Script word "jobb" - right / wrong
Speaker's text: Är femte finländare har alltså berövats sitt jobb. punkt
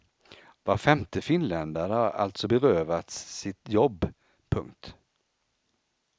right